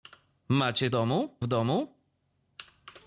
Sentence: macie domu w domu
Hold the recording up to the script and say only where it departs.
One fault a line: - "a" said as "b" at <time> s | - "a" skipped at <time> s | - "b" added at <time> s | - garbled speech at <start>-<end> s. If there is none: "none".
none